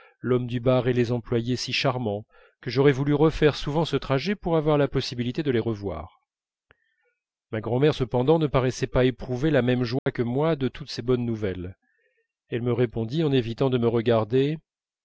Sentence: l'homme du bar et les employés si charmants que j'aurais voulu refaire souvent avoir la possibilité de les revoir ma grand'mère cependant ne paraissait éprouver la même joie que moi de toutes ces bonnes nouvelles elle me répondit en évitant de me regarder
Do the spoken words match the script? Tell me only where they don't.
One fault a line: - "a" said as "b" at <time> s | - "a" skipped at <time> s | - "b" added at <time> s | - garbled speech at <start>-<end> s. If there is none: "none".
- "ce trajet pour" added at 3.9 s
- "pas" added at 8.9 s